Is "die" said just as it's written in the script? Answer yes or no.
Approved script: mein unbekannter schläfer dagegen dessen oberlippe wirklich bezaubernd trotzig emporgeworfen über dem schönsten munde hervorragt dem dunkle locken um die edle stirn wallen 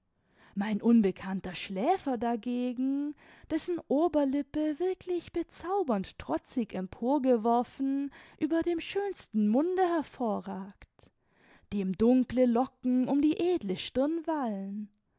yes